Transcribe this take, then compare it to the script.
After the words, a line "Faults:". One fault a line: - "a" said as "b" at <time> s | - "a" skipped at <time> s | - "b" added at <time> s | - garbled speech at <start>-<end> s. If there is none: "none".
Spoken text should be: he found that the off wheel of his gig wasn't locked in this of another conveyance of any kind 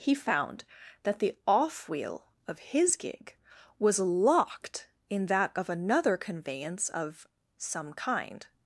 he found that the off wheel of his gig was locked in that of another conveyance of some kind
Faults:
- "wasn't" said as "was" at 3.8 s
- "this" said as "that" at 5.3 s
- "any" said as "some" at 7.6 s